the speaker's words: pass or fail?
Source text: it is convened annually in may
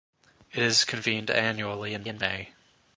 fail